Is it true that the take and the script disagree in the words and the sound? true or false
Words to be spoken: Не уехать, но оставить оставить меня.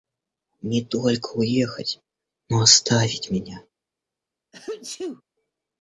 true